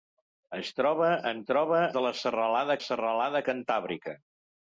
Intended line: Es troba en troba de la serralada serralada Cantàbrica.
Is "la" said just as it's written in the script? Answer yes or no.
yes